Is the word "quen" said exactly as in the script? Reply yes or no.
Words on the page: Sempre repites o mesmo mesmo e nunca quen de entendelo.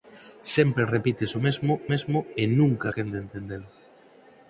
yes